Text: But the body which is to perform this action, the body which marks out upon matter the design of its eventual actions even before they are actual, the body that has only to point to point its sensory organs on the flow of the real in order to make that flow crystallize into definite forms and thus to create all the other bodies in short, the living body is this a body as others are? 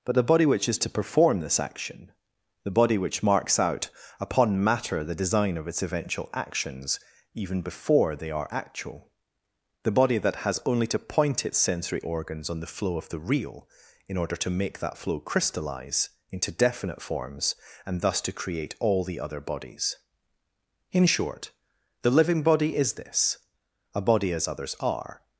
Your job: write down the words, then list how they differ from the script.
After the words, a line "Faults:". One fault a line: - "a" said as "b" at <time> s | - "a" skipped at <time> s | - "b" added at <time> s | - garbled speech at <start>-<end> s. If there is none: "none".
But the body which is to perform this action, the body which marks out upon matter the design of its eventual actions even before they are actual, the body that has only to point its sensory organs on the flow of the real in order to make that flow crystallize into definite forms and thus to create all the other bodies in short, the living body is this a body as others are?
Faults:
- "to point" skipped at 11.5 s